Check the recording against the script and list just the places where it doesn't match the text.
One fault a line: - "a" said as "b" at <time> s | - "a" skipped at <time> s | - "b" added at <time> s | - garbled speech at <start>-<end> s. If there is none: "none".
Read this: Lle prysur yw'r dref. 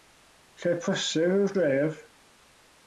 none